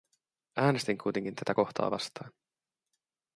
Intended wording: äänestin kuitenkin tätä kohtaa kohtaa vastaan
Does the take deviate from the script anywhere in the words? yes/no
yes